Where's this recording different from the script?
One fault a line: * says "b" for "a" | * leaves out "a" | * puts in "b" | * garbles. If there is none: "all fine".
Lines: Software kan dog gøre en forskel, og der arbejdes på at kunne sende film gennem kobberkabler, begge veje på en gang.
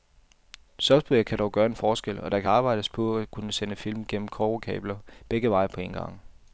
all fine